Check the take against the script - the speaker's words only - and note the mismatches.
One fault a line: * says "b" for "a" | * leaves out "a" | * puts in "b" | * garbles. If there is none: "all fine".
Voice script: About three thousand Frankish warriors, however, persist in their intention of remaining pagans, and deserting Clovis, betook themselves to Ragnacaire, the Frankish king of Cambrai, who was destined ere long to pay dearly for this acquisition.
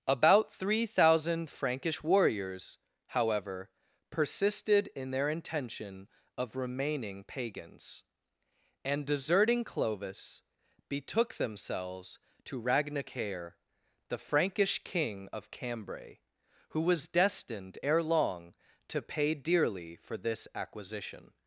* says "persisted" for "persist"